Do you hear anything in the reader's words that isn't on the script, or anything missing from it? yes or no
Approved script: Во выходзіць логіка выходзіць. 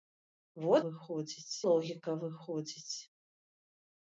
no